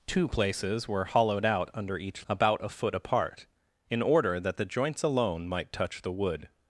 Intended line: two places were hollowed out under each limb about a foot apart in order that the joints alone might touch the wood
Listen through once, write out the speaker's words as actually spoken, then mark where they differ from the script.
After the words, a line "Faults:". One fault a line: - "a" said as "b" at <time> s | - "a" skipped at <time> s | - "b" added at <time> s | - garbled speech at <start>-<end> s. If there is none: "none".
two places were hollowed out under each about a foot apart in order that the joints alone might touch the wood
Faults:
- "limb" skipped at 2.2 s